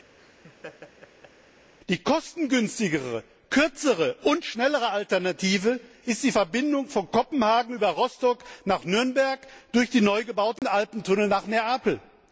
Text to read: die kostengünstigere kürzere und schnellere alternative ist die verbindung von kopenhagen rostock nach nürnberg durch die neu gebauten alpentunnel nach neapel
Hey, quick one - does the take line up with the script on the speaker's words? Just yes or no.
no